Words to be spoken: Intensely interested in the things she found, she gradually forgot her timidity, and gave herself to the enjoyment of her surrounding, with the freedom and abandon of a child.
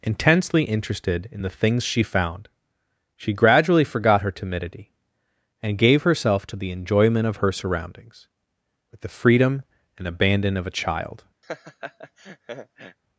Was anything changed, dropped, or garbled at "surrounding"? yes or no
yes